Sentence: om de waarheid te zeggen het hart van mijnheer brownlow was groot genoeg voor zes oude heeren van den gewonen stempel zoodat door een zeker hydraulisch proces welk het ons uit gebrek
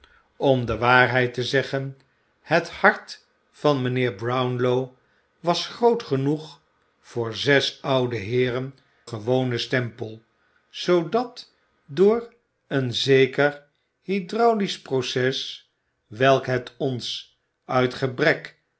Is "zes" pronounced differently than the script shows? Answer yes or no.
no